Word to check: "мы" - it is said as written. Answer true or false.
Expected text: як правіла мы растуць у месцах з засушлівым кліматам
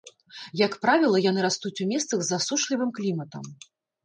false